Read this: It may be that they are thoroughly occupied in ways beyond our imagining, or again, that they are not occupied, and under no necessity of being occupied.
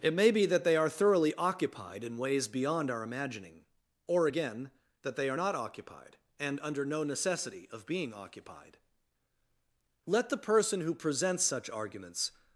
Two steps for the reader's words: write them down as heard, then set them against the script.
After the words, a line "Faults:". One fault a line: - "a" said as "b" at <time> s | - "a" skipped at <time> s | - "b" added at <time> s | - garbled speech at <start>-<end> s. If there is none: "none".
It may be that they are thoroughly occupied in ways beyond our imagining, or again, that they are not occupied, and under no necessity of being occupied. Let the person who presents such arguments
Faults:
- "Let the person who presents such arguments" added at 10.0 s